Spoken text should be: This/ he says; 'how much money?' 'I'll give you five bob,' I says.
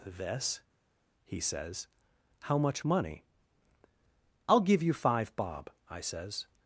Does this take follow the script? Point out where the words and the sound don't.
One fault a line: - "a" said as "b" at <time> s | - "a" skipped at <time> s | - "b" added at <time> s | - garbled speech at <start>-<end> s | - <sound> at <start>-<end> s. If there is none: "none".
none